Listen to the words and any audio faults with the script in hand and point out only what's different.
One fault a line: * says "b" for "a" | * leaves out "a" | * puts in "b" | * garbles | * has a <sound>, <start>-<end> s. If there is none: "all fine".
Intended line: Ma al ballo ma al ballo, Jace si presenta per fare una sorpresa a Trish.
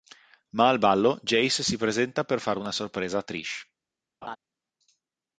* leaves out "ma al ballo"
* has a laugh, 4.2-4.4 s